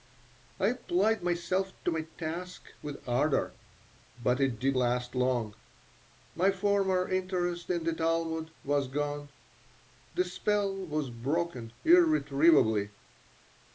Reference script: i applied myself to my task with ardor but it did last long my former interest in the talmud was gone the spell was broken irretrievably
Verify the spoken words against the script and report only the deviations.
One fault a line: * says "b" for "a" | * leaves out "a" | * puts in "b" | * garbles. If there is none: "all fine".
all fine